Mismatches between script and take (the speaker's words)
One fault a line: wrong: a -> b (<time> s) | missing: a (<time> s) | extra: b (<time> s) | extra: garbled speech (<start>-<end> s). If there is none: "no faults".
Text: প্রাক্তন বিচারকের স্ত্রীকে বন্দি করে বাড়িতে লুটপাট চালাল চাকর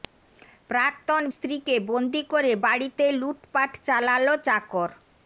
missing: বিচারকের (1.2 s)